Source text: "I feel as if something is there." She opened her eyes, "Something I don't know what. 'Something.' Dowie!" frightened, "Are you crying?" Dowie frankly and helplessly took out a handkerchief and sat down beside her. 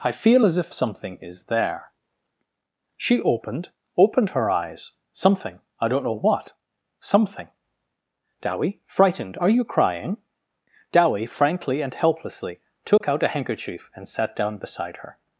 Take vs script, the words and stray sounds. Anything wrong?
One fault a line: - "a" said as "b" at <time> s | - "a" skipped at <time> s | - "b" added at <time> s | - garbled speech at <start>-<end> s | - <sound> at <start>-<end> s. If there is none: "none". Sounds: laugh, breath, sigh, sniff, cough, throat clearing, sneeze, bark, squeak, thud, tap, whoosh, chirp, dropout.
- "opened" added at 4.0 s
- dropout at 13.0-13.0 s